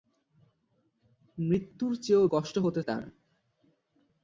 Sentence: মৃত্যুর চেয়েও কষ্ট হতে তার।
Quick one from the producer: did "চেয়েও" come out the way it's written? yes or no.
yes